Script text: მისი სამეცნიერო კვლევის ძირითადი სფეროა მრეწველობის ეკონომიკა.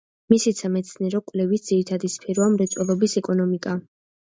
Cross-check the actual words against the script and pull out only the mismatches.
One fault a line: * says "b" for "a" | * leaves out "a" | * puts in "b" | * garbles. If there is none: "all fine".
all fine